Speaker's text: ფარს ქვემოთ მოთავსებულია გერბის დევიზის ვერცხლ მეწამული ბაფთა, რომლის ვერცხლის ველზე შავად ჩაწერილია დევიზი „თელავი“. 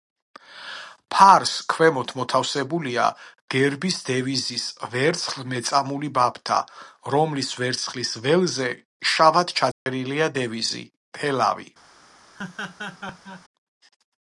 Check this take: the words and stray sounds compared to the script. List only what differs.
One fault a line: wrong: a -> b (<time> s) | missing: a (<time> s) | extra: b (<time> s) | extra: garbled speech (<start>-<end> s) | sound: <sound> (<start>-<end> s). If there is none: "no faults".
sound: dropout (9.7-9.9 s)
sound: laugh (12.3-13.4 s)